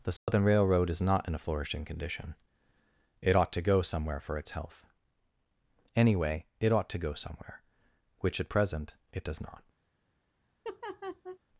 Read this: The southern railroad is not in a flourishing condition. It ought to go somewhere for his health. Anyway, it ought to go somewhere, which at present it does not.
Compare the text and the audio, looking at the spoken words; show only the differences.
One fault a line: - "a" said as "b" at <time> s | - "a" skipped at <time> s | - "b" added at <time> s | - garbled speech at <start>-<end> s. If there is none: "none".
- "his" said as "its" at 4.4 s